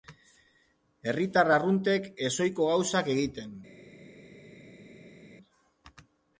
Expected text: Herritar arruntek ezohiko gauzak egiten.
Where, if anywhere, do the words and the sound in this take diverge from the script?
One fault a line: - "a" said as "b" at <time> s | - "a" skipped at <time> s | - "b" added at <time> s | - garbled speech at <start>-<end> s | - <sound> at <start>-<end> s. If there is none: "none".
none